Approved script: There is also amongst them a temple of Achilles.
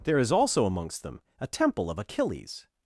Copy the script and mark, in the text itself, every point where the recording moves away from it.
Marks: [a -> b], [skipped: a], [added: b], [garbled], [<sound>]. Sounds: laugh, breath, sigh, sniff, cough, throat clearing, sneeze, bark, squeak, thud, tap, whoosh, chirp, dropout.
There is also amongst them a temple of Achilles.